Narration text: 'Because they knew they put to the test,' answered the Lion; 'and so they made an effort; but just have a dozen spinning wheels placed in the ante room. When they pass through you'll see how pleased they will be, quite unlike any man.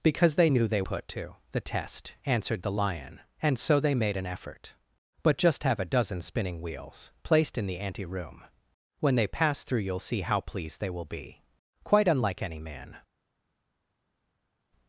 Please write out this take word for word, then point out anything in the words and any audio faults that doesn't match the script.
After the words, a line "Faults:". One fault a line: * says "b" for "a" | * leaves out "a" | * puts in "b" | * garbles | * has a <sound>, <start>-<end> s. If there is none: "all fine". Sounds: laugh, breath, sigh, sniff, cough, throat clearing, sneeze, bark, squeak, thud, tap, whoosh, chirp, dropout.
'Because they knew they put to the test,' answered the Lion; 'and so they made an effort; but just have a dozen spinning wheels placed in the ante room. When they pass through you'll see how pleased they will be, quite unlike any man.
Faults:
all fine